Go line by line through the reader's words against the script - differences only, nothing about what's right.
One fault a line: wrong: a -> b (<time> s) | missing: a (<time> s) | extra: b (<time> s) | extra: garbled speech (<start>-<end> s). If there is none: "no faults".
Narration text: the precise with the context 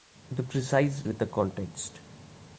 no faults